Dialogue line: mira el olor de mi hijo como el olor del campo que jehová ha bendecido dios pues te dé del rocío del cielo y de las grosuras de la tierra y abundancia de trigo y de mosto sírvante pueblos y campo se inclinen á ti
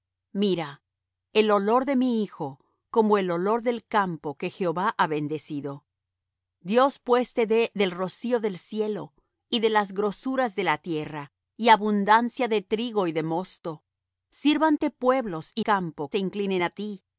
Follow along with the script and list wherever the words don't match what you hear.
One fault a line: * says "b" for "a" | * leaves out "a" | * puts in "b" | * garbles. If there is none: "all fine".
all fine